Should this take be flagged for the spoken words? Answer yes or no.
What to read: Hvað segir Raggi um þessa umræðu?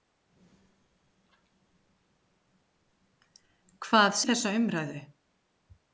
yes